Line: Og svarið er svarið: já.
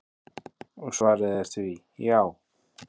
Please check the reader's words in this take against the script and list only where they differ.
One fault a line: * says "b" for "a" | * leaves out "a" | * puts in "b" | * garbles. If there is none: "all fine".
* says "því" for "svarið"